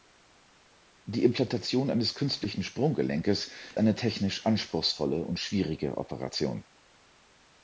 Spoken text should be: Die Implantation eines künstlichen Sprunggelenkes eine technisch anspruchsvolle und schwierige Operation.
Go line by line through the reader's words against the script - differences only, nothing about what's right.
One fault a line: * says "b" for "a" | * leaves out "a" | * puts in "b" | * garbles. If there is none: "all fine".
all fine